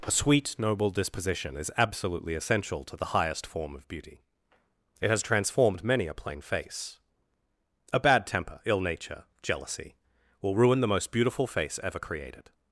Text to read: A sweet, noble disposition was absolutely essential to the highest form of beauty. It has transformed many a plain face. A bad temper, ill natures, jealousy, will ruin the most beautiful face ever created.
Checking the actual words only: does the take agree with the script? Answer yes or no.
no